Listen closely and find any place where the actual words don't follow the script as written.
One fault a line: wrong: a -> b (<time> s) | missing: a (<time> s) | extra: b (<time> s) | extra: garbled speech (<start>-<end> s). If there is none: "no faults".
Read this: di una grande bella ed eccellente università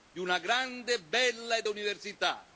missing: eccellente (1.7 s)